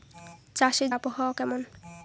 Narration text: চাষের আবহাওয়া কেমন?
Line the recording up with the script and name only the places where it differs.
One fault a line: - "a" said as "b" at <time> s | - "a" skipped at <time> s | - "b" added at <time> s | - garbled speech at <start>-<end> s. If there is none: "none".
none